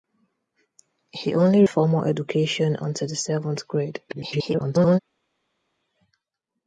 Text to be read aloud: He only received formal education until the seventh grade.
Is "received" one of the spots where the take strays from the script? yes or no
yes